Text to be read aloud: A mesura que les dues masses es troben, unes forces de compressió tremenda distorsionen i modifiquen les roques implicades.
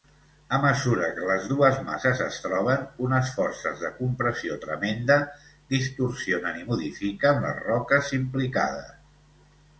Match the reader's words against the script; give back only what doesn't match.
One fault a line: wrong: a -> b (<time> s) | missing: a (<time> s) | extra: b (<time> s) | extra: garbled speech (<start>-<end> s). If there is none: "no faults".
no faults